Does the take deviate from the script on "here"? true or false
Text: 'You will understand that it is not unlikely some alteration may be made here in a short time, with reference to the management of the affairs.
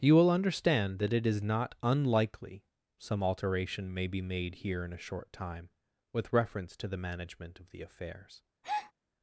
false